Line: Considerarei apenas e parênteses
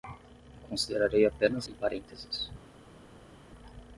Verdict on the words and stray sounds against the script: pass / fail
pass